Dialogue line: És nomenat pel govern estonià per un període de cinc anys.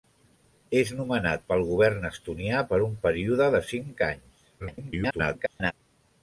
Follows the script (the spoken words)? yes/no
no